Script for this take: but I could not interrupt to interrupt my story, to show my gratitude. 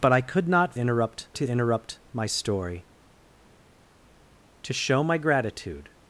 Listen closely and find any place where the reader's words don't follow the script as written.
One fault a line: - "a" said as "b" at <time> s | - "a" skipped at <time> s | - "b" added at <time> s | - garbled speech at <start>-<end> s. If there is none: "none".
none